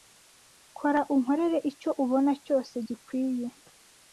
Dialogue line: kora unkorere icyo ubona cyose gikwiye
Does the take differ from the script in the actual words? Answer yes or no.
no